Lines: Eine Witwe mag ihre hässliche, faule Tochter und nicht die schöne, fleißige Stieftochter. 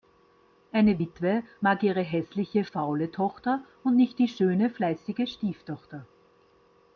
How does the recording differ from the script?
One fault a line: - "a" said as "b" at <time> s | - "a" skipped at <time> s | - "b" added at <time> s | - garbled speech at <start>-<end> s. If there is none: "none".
none